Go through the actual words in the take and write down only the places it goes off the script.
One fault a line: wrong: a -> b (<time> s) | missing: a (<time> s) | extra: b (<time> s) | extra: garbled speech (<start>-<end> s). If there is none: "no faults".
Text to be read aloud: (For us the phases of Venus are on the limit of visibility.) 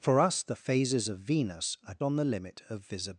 no faults